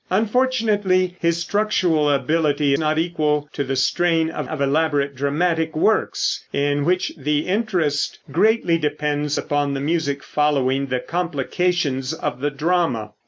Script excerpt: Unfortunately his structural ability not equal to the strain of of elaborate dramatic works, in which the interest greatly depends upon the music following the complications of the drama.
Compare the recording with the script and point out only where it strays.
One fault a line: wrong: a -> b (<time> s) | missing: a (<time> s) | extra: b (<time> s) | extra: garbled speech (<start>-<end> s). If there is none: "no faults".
no faults